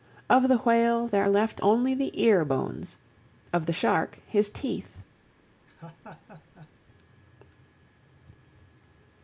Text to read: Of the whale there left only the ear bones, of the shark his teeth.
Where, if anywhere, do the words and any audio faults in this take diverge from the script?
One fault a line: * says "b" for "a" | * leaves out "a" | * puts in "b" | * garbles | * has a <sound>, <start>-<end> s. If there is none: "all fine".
* has a laugh, 5.7-6.7 s